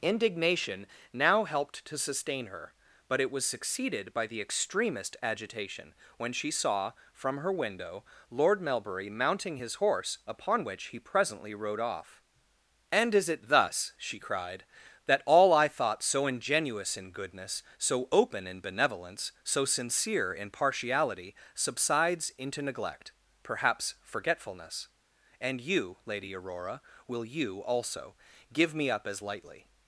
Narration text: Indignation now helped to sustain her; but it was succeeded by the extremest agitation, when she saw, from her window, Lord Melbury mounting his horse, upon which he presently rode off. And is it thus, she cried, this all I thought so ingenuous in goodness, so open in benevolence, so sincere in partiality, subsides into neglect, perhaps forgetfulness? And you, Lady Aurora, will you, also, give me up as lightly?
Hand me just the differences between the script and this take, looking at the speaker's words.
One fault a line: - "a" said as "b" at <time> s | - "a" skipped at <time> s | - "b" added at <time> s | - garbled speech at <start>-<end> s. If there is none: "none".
- "this" said as "that" at 15.0 s